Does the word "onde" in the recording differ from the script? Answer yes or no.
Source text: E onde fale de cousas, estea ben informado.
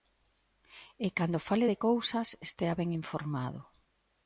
yes